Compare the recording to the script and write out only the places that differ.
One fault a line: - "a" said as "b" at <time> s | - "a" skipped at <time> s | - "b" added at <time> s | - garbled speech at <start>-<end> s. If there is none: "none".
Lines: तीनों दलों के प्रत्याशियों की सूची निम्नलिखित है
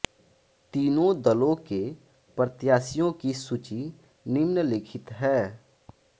none